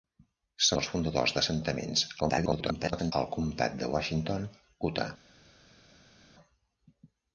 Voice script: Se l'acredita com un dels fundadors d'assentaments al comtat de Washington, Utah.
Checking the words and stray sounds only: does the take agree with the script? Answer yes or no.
no